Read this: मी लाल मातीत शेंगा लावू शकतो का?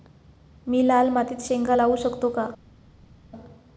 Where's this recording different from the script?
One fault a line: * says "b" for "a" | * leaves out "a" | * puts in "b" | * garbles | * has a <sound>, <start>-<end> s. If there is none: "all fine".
all fine